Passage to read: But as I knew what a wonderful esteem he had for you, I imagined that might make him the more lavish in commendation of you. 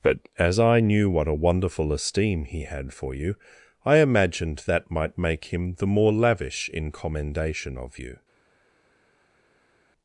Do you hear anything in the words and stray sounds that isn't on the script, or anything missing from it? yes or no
no